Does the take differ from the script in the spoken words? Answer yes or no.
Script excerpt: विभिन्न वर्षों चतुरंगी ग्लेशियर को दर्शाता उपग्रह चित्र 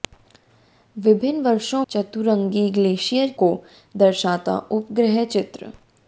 no